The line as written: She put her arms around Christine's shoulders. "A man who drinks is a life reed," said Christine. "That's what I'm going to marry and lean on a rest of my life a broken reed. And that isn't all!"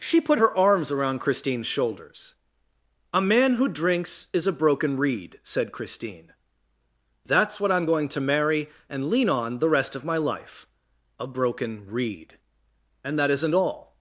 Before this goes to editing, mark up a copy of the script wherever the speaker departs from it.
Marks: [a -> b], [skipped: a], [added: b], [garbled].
She put her arms around Christine's shoulders. "A man who drinks is a [life -> broken] reed," said Christine. "That's what I'm going to marry and lean on [a -> the] rest of my life a broken reed. And that isn't all!"